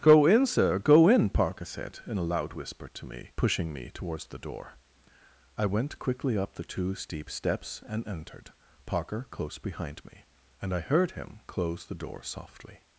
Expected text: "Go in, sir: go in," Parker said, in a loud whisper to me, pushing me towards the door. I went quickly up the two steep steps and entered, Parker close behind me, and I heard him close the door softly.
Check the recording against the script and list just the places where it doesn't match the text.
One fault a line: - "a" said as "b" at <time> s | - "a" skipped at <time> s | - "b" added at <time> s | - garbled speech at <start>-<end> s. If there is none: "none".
none